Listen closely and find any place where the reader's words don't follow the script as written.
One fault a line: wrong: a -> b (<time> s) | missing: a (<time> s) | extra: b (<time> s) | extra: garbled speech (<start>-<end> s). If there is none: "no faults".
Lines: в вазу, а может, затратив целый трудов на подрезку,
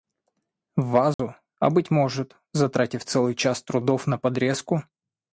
extra: быть (1.7 s)
extra: час (3.4 s)